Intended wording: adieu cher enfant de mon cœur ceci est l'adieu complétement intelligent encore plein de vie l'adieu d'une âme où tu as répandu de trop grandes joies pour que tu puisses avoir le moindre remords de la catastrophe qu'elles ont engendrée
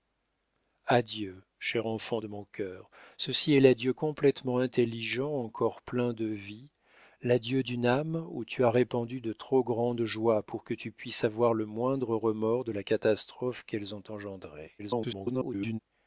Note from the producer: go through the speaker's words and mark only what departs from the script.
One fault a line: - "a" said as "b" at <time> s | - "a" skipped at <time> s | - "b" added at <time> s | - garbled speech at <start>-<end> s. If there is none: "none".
- garbled speech at 14.8-15.8 s